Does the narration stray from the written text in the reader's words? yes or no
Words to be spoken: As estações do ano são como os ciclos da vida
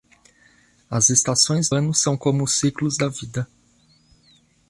yes